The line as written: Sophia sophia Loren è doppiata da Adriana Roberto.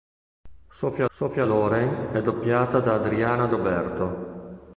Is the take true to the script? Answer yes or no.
yes